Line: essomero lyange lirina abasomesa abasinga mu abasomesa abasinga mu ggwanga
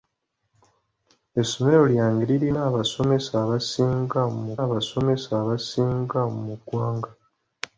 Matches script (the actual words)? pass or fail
pass